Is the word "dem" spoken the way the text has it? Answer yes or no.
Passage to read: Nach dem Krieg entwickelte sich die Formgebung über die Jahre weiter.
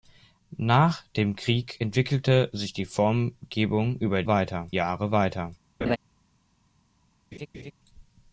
yes